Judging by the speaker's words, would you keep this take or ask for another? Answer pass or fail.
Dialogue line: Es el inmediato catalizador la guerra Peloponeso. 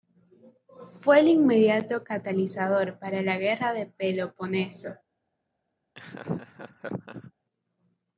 fail